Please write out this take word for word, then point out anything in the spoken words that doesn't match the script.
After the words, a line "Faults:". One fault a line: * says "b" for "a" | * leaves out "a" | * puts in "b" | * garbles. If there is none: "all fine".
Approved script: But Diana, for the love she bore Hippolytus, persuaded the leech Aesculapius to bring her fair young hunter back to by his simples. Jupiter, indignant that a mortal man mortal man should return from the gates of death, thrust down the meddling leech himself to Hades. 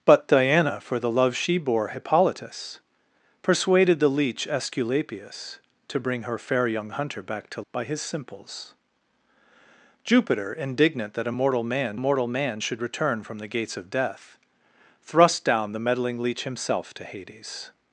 But Diana, for the love she bore Hippolytus, persuaded the leech Aesculapius to bring her fair young hunter back to by his simples. Jupiter, indignant that a mortal man mortal man should return from the gates of death, thrust down the meddling leech himself to Hades.
Faults:
all fine